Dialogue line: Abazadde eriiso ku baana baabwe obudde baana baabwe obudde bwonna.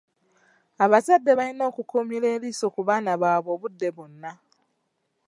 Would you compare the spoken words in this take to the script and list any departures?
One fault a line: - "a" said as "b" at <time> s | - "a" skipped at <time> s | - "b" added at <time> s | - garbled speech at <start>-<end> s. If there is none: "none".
- "balina okukuumira" added at 1.4 s
- "baana baabwe obudde" skipped at 3.9 s